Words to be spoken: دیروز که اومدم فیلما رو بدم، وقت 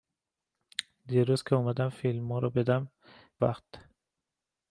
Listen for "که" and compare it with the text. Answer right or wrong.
right